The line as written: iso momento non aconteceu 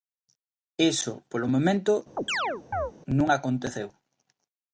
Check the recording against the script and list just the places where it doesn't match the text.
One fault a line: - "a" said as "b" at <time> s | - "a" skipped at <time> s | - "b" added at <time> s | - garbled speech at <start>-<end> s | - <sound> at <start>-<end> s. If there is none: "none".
- "polo" added at 1.3 s
- chirp at 2.2-2.9 s